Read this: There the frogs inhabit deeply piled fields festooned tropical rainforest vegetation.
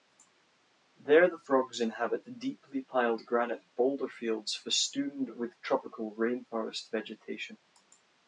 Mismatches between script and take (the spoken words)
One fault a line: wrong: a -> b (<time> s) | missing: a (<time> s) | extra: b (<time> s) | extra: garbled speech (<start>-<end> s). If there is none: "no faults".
extra: granite boulder (3.2 s)
extra: with (5.3 s)